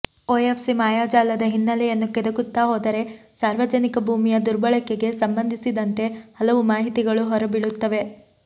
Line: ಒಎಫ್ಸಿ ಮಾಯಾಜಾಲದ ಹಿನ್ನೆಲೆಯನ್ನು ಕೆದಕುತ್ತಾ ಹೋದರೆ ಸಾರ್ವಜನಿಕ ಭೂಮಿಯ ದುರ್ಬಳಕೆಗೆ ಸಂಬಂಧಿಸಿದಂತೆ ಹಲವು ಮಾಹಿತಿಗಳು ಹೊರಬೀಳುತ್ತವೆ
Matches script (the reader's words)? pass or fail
pass